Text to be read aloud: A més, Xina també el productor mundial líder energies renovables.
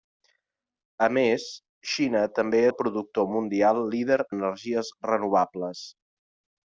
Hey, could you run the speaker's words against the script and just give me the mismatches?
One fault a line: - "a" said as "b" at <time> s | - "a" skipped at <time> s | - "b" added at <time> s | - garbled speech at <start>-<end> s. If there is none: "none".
none